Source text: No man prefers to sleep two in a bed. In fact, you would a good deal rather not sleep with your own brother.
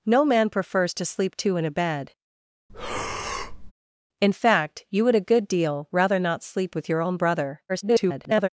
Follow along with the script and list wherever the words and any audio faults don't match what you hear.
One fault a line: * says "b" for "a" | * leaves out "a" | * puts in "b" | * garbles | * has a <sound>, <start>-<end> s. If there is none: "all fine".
* has a breath, 2.7-3.7 s
* garbles